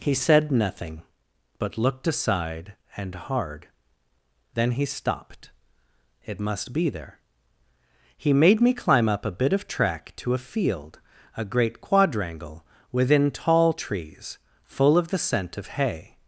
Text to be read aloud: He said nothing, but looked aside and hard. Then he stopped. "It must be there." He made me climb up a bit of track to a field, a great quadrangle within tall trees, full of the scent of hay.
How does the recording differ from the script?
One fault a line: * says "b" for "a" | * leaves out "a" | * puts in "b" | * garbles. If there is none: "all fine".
all fine